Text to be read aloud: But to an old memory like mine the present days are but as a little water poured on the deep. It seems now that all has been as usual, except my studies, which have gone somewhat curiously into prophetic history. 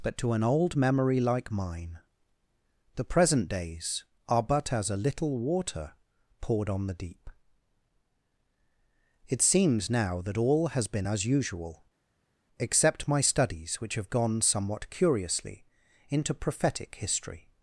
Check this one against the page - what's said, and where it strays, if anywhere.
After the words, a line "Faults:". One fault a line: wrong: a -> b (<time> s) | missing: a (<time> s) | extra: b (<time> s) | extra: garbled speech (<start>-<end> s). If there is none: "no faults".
But to an old memory like mine the present days are but as a little water poured on the deep. It seems now that all has been as usual, except my studies, which have gone somewhat curiously into prophetic history.
Faults:
no faults